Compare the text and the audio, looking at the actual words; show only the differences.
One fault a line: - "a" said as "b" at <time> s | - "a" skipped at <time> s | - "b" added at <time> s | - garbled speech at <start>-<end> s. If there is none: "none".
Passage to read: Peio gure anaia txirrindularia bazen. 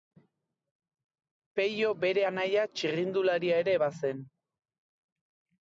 - "gure" said as "bere" at 2.1 s
- "ere" added at 3.6 s